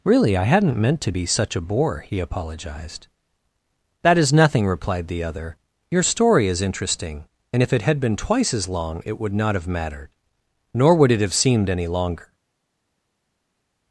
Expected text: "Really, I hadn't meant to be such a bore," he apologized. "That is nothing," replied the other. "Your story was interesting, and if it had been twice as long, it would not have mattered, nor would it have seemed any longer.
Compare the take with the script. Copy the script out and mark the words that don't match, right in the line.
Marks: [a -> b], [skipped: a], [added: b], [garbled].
"Really, I hadn't meant to be such a bore," he apologized. "That is nothing," replied the other. "Your story [was -> is] interesting, and if it had been twice as long, it would not have mattered, nor would it have seemed any longer.